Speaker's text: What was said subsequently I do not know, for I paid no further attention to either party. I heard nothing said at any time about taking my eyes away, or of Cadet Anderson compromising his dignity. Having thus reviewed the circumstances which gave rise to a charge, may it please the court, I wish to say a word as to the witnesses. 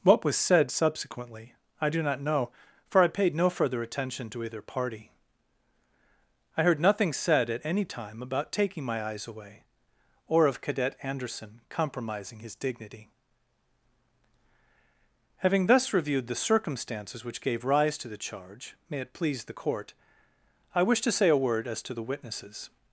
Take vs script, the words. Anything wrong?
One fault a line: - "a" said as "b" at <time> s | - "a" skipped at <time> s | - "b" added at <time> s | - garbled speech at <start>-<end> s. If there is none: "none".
- "a" said as "the" at 18.1 s